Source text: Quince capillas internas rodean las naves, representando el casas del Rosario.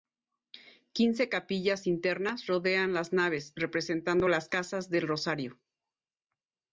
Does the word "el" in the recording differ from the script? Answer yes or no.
yes